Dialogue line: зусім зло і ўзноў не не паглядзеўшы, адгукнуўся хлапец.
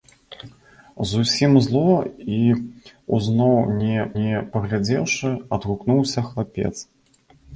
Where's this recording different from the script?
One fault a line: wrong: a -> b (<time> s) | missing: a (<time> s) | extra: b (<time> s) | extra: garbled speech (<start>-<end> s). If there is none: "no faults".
no faults